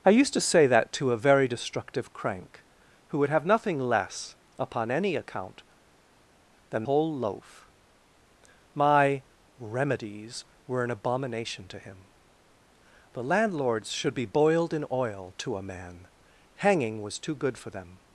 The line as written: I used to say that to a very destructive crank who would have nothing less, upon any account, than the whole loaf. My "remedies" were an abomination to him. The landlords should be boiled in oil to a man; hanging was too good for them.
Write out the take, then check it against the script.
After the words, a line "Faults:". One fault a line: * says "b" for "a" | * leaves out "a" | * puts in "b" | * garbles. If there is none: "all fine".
I used to say that to a very destructive crank who would have nothing less, upon any account, than whole loaf. My "remedies" were an abomination to him. The landlords should be boiled in oil to a man; hanging was too good for them.
Faults:
* leaves out "the"